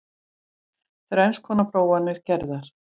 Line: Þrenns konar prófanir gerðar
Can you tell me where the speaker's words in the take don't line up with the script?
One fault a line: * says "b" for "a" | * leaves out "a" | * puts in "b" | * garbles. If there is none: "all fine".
all fine